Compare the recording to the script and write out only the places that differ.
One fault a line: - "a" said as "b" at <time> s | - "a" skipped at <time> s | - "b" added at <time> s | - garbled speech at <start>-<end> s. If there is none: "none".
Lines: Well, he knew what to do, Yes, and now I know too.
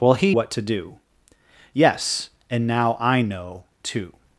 - "knew" skipped at 0.3 s